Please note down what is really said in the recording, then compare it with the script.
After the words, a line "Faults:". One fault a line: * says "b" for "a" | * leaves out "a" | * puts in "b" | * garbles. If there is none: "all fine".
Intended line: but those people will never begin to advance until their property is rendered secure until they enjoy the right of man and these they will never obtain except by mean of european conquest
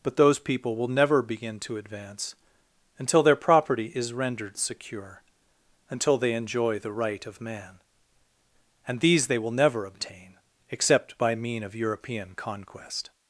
but those people will never begin to advance until their property is rendered secure until they enjoy the right of man and these they will never obtain except by mean of european conquest
Faults:
all fine